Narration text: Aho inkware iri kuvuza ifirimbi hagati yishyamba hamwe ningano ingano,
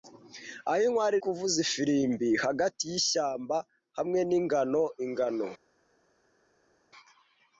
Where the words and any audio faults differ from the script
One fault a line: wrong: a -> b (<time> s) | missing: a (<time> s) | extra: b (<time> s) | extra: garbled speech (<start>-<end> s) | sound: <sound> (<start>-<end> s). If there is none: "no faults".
missing: iri (1.1 s)